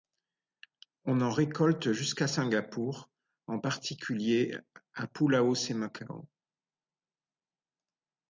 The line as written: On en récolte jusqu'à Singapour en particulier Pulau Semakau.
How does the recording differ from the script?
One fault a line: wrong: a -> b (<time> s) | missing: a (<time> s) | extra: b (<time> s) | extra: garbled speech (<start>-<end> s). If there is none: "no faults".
extra: à (4.9 s)